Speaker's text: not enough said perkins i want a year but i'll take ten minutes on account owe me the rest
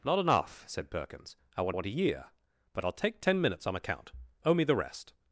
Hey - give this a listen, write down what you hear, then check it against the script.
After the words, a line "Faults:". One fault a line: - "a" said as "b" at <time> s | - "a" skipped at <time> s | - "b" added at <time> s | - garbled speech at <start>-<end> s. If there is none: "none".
not enough said perkins i want want a year but i'll take ten minutes on account owe me the rest
Faults:
- "want" added at 1.7 s